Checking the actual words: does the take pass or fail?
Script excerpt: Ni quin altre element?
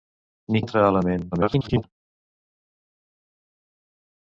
fail